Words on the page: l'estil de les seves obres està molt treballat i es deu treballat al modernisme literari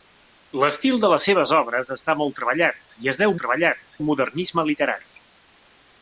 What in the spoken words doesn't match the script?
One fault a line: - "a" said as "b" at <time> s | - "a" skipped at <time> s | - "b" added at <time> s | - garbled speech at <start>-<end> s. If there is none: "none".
none